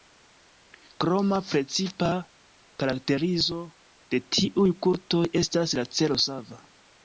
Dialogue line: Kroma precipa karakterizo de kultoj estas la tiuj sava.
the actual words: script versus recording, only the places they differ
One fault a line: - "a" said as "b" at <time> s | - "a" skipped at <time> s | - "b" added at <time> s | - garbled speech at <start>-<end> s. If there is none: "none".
- "tiuj" added at 4.4 s
- "tiuj" said as "celo" at 6.0 s